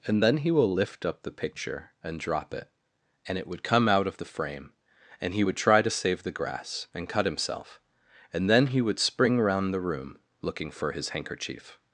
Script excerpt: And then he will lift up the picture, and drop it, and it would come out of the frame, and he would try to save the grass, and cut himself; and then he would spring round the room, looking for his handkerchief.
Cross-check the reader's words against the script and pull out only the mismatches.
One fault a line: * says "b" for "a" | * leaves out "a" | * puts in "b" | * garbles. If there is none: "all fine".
all fine